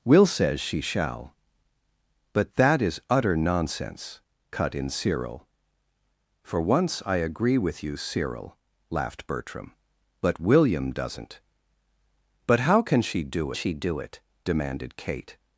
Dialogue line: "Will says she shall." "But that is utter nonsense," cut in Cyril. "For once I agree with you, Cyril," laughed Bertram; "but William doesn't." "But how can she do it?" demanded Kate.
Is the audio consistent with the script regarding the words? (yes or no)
no